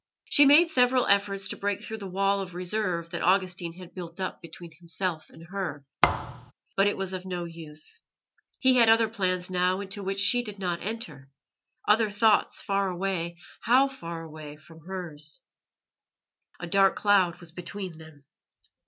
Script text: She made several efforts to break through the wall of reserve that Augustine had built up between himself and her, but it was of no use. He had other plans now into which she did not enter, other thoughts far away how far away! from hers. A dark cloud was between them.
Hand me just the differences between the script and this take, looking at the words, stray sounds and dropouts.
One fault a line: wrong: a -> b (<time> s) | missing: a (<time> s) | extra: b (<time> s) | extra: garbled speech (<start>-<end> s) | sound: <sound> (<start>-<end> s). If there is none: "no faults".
sound: thud (6.0-6.5 s)